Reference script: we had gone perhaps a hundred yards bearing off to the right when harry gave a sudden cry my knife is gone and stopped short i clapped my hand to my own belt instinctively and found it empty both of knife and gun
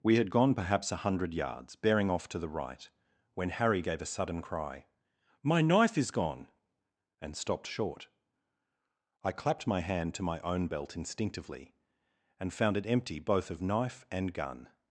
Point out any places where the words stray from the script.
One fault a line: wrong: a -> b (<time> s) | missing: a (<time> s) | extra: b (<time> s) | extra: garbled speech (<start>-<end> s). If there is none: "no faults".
no faults